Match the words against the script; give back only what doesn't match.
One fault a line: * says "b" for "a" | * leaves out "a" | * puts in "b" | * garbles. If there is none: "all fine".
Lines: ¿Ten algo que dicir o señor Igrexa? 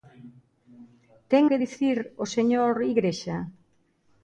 * leaves out "algo"